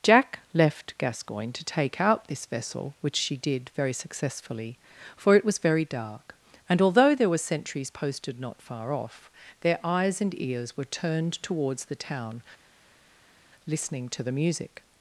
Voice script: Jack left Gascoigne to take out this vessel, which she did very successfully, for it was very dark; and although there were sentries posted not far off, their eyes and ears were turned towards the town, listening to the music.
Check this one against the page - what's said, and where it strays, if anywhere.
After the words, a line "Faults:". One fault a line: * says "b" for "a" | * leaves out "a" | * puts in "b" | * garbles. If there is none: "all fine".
Jack left Gascoigne to take out this vessel, which she did very successfully, for it was very dark; and although there were sentries posted not far off, their eyes and ears were turned towards the town, listening to the music.
Faults:
all fine